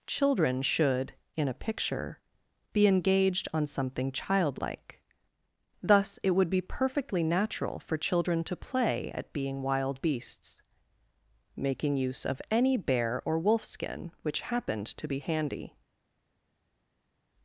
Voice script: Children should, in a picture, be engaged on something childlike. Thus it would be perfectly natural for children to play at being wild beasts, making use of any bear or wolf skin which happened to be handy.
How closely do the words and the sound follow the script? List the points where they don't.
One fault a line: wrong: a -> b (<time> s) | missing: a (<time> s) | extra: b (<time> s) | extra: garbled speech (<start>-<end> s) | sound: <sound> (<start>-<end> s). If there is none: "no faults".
no faults